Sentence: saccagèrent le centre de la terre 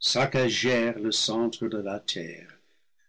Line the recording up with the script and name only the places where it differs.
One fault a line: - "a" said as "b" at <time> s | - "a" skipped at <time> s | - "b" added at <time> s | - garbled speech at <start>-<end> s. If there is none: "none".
none